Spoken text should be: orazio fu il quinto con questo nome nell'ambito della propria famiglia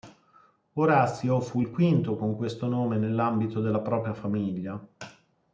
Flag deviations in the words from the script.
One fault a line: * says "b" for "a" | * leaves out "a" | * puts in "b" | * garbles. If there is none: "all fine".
all fine